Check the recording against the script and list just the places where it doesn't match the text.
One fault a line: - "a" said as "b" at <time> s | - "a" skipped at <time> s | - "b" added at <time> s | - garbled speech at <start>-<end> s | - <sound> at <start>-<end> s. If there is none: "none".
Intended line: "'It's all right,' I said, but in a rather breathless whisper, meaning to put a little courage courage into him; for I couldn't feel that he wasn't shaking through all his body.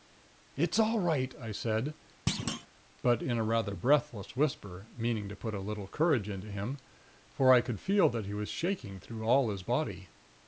- thud at 2.3-2.7 s
- "courage" skipped at 6.3 s
- "couldn't" said as "could" at 7.6 s
- "wasn't" said as "was" at 8.3 s